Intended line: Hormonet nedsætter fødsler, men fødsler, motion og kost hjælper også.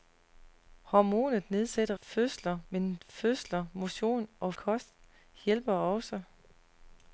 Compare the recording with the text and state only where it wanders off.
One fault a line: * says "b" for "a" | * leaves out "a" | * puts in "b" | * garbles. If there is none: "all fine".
all fine